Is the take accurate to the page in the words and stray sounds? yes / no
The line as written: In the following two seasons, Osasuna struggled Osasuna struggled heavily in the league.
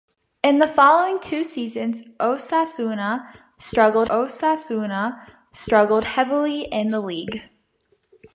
yes